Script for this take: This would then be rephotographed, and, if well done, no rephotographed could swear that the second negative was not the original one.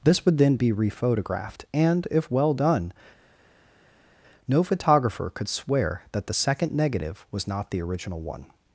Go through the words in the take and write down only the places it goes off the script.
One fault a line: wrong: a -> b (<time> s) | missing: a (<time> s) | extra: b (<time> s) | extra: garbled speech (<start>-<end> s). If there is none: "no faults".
wrong: rephotographed -> photographer (4.6 s)